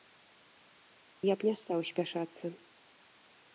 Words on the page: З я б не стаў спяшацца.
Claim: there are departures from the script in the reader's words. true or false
false